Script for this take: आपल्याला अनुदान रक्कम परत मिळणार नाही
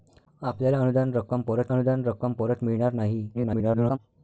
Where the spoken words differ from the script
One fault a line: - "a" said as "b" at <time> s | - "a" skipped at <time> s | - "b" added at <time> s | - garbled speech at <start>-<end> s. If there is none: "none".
- "अनुदान रक्कम परत" added at 1.7 s
- garbled speech at 3.3-4.0 s